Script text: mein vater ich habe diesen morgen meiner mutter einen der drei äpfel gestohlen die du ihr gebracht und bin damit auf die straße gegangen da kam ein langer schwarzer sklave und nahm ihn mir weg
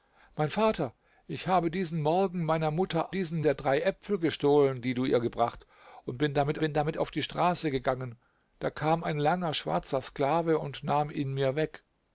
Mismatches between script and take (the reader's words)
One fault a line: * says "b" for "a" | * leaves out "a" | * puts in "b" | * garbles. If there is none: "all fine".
* says "diesen" for "einen"
* puts in "bin damit"